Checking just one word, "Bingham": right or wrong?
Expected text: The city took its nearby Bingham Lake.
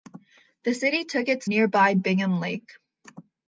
right